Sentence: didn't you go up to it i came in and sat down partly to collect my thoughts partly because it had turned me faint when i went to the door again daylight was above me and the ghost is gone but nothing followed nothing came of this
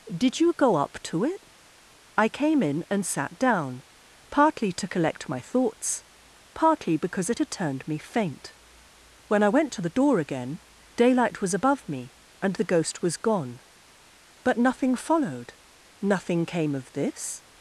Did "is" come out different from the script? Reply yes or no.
yes